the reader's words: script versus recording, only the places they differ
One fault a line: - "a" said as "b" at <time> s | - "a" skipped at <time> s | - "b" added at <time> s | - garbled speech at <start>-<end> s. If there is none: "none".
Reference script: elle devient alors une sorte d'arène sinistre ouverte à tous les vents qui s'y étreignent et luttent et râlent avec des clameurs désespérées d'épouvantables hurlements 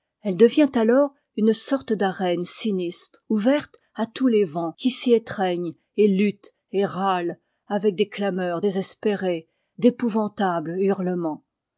none